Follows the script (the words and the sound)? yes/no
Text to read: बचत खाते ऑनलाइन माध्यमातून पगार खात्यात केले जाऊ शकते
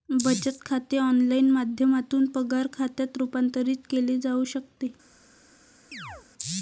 no